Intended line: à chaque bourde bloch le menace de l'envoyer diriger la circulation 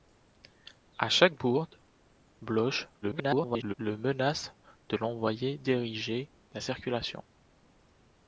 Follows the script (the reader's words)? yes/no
no